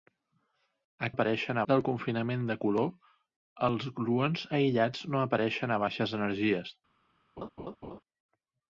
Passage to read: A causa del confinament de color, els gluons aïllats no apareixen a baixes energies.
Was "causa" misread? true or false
true